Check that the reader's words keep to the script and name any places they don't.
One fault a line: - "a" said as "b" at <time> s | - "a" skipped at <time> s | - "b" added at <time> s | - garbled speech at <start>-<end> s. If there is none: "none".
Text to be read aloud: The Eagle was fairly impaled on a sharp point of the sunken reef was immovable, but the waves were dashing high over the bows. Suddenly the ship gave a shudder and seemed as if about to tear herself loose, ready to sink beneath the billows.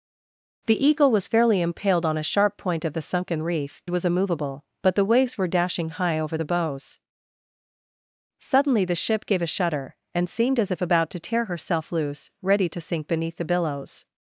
none